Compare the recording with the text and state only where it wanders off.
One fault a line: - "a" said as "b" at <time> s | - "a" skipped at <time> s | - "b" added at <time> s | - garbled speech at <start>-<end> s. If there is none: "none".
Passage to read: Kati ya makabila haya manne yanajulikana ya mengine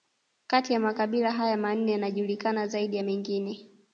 - "zaidi" added at 2.7 s